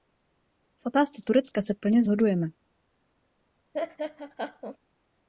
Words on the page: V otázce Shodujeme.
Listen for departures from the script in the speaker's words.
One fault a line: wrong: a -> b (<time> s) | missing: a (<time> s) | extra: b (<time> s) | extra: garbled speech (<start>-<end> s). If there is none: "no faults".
extra: Turecka se plně (1.2 s)